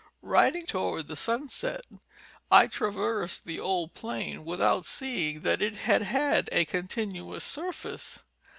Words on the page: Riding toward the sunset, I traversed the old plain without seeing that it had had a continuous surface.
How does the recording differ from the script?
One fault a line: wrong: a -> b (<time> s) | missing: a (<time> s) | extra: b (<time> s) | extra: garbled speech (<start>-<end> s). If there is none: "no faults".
no faults